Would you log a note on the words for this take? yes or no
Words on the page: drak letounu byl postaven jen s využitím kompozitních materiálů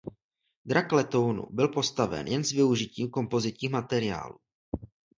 no